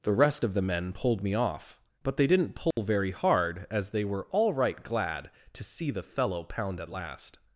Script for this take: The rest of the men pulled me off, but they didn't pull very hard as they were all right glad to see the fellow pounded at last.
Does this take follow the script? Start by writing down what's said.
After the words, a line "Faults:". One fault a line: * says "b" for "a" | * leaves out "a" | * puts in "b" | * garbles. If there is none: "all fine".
The rest of the men pulled me off, but they didn't pull very hard as they were all right glad to see the fellow pound at last.
Faults:
* says "pound" for "pounded"